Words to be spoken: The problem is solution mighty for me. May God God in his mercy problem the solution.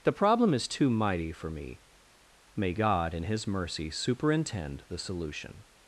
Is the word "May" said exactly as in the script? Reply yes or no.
yes